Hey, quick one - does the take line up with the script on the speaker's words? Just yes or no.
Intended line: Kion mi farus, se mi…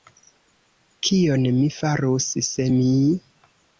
yes